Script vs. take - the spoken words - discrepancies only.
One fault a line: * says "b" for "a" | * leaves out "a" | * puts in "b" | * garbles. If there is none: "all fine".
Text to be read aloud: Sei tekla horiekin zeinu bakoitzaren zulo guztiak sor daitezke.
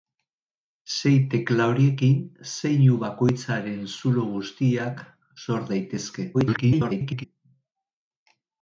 * garbles